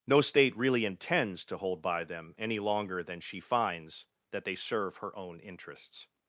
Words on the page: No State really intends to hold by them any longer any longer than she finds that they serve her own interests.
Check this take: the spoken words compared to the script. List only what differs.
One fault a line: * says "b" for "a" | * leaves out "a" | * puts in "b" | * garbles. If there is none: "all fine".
* leaves out "any longer"